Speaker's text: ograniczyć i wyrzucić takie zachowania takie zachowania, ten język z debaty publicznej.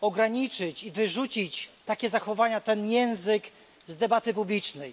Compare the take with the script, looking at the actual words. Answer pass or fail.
fail